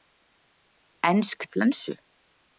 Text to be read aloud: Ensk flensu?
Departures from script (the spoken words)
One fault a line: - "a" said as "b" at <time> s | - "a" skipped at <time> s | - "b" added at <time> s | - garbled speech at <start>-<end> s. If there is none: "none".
none